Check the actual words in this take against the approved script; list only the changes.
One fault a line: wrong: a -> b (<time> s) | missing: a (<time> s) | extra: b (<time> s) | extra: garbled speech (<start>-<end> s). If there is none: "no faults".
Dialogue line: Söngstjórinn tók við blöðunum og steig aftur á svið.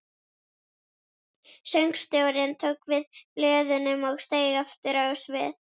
no faults